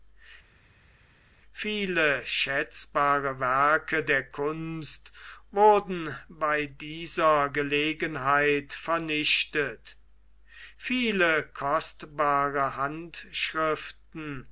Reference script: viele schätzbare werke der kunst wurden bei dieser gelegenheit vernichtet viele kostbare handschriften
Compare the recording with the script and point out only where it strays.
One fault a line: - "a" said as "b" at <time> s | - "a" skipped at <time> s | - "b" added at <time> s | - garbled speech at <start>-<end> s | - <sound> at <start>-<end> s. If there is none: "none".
none